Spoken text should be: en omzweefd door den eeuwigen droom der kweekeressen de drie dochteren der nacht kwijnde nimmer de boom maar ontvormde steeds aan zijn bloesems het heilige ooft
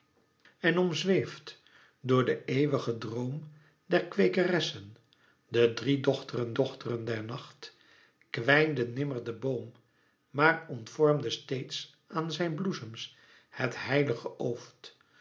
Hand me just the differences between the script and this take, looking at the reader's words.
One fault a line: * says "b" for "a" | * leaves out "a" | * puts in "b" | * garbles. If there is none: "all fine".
* puts in "dochteren"